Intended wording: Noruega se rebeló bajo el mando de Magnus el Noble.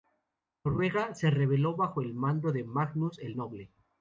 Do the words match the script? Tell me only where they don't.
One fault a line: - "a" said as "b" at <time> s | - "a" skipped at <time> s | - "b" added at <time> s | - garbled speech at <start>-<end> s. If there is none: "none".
none